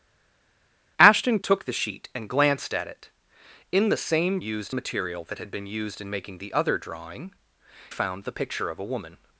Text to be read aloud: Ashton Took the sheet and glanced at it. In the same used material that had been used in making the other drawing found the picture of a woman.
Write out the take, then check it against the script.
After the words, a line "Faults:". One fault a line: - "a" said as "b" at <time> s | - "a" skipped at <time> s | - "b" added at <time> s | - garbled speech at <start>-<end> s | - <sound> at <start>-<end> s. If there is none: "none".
Ashton Took the sheet and glanced at it. In the same used material that had been used in making the other drawing found the picture of a woman.
Faults:
none